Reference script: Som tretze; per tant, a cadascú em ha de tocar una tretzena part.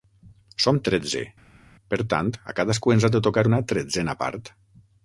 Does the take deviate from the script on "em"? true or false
true